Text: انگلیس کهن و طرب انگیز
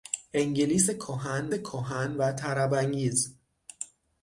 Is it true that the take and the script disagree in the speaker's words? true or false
true